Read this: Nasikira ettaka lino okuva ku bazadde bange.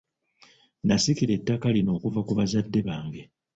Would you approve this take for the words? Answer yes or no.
yes